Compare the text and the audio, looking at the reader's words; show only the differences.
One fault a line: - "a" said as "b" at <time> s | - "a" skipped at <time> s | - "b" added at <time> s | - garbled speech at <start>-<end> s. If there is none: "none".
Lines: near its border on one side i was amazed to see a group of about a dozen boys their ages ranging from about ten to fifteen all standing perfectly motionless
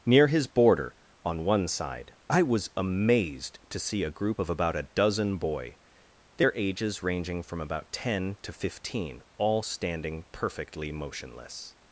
- "its" said as "his" at 0.3 s
- "boys" said as "boy" at 5.4 s